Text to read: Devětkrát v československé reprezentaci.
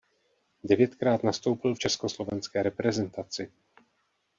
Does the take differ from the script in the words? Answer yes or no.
yes